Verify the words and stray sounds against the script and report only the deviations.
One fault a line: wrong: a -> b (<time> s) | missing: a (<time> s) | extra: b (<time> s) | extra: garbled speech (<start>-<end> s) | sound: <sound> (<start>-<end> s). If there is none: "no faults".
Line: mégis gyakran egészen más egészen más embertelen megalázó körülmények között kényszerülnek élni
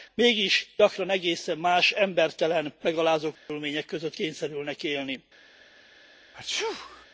missing: egészen más (1.9 s)
sound: dropout (3.4-3.5 s)
sound: sneeze (6.3-7.1 s)